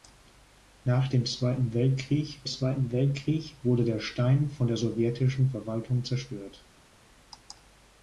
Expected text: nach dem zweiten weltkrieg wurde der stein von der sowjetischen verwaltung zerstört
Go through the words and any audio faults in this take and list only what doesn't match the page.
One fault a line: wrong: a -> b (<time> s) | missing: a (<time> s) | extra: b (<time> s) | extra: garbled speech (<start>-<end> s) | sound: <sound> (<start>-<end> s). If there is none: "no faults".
extra: zweiten weltkrieg (2.5 s)